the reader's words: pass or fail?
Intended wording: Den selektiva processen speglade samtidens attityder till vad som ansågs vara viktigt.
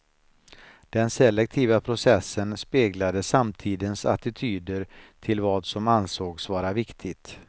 pass